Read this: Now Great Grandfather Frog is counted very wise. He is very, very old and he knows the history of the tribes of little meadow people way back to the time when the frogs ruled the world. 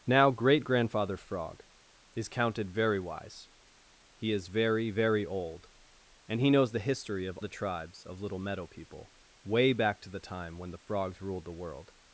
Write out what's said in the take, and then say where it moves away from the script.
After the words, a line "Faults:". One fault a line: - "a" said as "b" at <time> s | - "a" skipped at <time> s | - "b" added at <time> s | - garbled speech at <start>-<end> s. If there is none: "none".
Now Great Grandfather Frog is counted very wise. He is very, very old and he knows the history of the tribes of little meadow people way back to the time when the frogs ruled the world.
Faults:
none